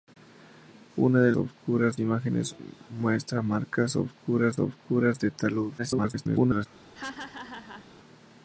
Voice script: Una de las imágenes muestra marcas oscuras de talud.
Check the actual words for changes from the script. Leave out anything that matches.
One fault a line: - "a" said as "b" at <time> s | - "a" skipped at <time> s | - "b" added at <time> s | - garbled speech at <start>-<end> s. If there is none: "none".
- "las" said as "oscuras" at 1.4 s
- "oscuras" added at 4.6 s
- garbled speech at 5.8-6.7 s